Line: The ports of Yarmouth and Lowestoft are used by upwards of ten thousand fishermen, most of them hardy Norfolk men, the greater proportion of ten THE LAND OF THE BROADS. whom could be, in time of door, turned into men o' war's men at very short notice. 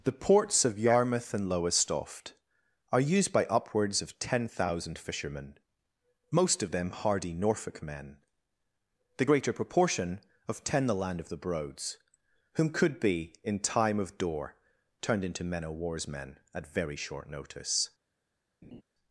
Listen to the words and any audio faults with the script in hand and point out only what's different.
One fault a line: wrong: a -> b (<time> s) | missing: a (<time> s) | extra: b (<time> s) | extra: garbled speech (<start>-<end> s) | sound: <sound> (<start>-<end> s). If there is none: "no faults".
sound: laugh (18.6-18.8 s)